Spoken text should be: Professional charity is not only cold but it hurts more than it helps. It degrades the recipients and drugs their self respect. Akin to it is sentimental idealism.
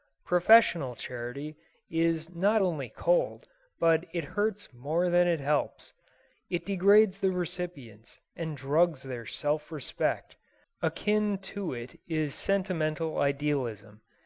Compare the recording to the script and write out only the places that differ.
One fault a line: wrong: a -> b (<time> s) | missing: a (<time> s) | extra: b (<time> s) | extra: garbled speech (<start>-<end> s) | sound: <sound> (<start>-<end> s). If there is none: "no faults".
no faults